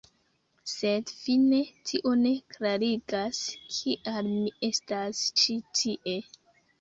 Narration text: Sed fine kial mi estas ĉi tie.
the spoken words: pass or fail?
fail